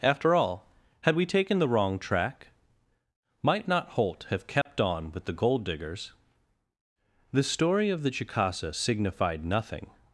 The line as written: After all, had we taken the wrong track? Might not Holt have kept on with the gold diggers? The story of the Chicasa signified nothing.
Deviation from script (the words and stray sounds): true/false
true